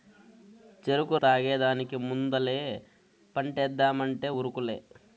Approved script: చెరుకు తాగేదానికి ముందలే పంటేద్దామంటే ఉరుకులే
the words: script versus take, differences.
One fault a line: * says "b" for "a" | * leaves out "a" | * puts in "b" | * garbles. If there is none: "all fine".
all fine